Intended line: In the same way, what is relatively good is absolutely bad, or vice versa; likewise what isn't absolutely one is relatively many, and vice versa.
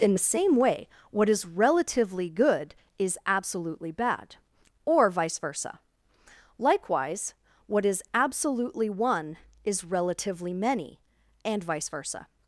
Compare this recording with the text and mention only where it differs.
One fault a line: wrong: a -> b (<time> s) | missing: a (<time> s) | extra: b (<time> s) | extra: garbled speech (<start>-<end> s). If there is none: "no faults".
wrong: isn't -> is (7.8 s)